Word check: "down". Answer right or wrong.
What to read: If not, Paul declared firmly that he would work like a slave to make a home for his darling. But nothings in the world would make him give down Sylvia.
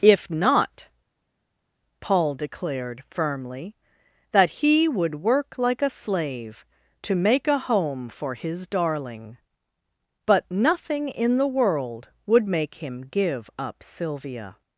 wrong